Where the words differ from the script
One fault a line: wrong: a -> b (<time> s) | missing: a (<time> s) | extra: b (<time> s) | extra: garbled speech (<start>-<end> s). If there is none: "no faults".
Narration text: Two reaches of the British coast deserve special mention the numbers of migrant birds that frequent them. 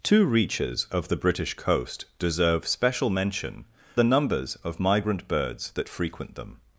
no faults